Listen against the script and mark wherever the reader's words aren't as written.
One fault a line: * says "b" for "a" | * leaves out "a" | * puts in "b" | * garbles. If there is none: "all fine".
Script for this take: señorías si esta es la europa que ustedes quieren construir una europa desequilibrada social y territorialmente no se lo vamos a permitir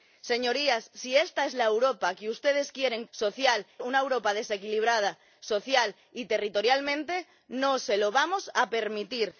* says "social" for "construir"